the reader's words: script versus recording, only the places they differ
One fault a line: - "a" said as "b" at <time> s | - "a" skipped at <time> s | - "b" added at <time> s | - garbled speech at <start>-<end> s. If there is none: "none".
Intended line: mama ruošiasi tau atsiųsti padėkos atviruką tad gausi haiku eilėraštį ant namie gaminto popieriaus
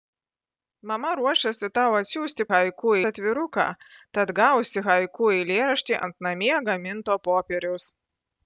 - "padėkos" said as "haiku" at 2.5 s